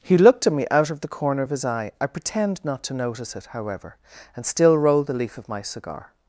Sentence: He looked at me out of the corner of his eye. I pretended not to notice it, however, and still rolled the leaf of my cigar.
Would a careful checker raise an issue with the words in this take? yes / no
yes